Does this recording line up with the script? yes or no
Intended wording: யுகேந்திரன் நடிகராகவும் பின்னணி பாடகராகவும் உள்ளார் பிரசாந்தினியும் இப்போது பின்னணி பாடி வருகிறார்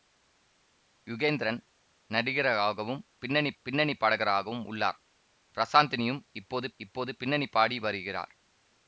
no